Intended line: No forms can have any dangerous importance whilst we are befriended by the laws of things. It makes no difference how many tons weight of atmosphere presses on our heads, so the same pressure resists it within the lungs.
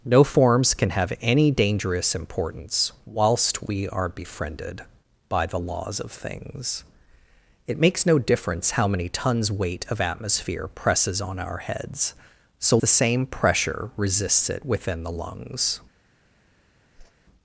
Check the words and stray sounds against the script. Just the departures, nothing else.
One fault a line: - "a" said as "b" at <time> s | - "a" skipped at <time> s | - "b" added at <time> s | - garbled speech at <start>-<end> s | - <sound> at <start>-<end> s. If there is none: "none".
- whoosh at 17.0-17.1 s